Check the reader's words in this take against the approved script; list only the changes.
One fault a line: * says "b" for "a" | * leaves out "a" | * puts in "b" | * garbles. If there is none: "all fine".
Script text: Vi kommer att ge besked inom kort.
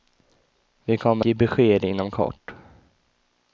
* leaves out "att"